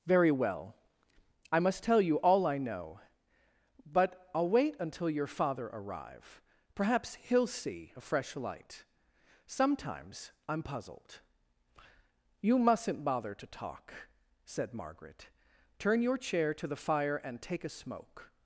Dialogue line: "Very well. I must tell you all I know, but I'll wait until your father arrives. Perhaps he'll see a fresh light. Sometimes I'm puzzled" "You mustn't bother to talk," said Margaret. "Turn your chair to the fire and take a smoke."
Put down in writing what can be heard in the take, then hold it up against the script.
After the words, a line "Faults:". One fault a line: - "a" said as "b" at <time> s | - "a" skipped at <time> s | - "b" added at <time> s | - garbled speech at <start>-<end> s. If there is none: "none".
"Very well. I must tell you all I know, but I'll wait until your father arrive. Perhaps he'll see a fresh light. Sometimes I'm puzzled" "You mustn't bother to talk," said Margaret. "Turn your chair to the fire and take a smoke."
Faults:
- "arrives" said as "arrive" at 5.7 s